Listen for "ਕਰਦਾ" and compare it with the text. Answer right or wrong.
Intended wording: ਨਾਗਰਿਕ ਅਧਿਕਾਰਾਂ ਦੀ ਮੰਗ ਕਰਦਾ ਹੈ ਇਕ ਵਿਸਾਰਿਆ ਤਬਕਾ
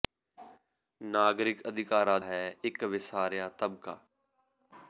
wrong